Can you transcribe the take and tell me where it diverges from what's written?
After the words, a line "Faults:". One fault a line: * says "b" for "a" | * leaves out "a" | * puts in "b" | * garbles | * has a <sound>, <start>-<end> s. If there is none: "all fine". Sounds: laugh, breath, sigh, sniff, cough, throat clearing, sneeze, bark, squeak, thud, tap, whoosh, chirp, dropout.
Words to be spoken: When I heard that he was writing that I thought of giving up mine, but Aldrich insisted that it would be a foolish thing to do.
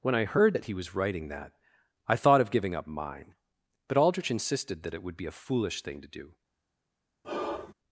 When I heard that he was writing that I thought of giving up mine, but Aldrich insisted that it would be a foolish thing to do.
Faults:
* has a sigh, 7.2-7.7 s